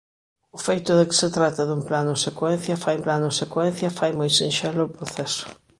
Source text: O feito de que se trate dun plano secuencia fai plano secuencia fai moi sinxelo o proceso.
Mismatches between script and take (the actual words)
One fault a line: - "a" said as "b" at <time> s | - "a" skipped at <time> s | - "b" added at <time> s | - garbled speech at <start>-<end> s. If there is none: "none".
none